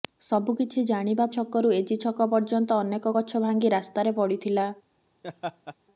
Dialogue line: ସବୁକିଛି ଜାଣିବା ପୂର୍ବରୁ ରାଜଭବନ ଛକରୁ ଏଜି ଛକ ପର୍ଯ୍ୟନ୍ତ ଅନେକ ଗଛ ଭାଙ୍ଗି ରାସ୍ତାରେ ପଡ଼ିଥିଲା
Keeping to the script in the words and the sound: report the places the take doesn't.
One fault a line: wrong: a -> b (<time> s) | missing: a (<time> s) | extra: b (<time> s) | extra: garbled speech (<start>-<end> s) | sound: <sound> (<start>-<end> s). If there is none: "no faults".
missing: ପୂର୍ବରୁ ରାଜଭବନ (1.3 s)
sound: laugh (5.2-5.8 s)